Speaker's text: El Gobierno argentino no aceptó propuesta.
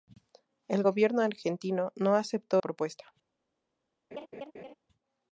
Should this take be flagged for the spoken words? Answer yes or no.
no